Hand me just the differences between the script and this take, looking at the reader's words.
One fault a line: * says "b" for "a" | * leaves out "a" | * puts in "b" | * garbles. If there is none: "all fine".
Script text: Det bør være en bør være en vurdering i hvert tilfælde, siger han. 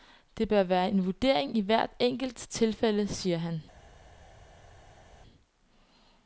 * leaves out "bør være en"
* puts in "enkelt"